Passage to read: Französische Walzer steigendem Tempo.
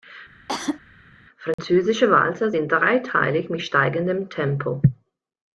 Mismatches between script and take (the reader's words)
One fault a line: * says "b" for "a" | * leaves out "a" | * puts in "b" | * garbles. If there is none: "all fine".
* puts in "sind dreiteilig mit"